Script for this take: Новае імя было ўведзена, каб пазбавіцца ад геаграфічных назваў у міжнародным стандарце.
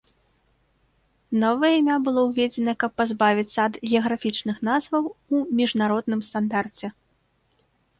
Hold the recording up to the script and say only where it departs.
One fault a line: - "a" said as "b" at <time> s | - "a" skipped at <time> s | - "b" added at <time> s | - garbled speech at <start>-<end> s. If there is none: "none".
none